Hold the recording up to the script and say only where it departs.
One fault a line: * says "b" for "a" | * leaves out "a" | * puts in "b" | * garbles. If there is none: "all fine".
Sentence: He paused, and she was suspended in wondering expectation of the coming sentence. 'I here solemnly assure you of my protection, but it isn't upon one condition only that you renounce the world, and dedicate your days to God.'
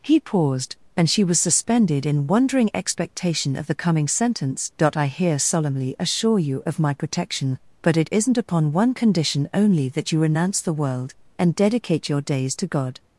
all fine